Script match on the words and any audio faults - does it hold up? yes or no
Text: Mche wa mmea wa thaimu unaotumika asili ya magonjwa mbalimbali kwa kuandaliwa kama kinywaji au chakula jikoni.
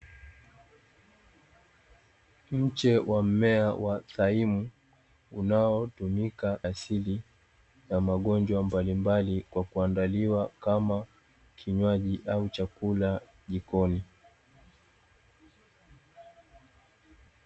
yes